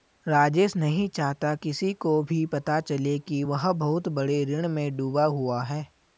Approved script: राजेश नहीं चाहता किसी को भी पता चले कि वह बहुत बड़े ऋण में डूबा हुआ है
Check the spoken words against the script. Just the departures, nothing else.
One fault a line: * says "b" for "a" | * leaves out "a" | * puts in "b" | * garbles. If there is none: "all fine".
all fine